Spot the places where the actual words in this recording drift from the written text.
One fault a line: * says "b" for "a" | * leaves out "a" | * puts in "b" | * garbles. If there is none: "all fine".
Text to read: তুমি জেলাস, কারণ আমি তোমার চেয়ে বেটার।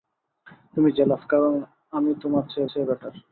* puts in "চেয়ে"